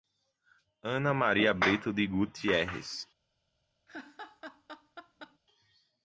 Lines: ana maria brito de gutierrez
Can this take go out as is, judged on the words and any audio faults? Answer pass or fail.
fail